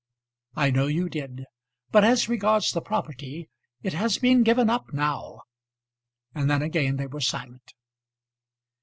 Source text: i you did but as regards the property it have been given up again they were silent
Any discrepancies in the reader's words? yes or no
yes